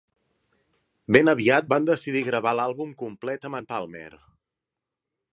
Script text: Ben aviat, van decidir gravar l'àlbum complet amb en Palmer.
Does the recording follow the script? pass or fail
pass